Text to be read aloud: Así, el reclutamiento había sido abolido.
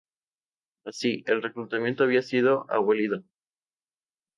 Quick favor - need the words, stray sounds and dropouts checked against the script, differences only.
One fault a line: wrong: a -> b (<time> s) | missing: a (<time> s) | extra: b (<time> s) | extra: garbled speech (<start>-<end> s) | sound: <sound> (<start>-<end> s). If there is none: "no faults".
no faults